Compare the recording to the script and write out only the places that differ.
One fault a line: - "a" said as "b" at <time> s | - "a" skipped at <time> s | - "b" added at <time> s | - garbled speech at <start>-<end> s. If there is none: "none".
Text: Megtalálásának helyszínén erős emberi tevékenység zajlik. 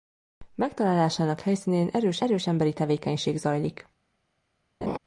- "erős" added at 2.2 s